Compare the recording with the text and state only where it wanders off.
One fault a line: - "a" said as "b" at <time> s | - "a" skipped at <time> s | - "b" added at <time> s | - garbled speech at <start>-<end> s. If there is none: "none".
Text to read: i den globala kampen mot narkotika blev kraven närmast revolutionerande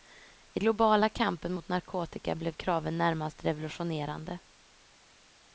- "den" skipped at 0.6 s